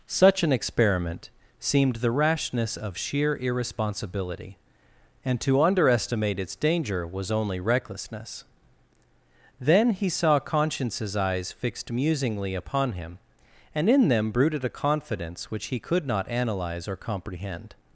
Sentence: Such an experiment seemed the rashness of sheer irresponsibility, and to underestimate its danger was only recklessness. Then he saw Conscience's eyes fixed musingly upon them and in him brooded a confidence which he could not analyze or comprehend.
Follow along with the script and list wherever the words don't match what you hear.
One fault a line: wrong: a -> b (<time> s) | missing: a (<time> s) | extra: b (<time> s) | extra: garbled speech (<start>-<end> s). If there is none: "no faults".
wrong: them -> him (12.9 s)
wrong: him -> them (14.1 s)